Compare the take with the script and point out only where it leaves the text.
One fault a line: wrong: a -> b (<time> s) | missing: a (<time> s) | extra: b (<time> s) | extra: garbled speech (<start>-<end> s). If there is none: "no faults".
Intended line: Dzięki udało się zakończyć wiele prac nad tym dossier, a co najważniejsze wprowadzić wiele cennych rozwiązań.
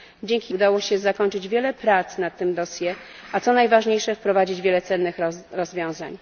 no faults